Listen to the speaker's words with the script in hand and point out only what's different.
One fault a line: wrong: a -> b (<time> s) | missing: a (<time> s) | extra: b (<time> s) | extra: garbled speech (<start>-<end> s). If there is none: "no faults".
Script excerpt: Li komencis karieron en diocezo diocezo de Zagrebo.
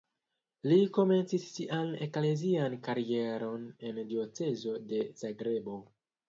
extra: sian eklezian (1.6 s)
missing: diocezo (4.8 s)